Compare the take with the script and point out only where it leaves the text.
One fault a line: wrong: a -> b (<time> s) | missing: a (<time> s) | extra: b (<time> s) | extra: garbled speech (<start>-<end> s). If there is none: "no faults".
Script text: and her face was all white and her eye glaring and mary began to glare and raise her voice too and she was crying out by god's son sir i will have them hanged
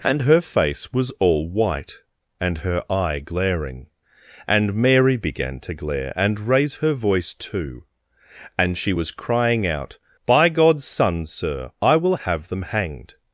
no faults